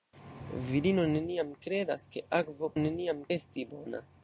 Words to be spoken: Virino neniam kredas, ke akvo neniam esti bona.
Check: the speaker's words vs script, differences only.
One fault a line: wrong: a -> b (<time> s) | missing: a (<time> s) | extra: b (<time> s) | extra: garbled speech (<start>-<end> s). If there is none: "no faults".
no faults